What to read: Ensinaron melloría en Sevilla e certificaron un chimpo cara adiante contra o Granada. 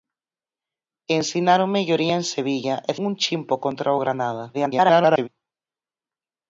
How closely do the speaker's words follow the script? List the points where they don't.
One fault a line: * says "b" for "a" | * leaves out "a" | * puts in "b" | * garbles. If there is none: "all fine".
* leaves out "certificaron"
* leaves out "cara adiante"
* garbles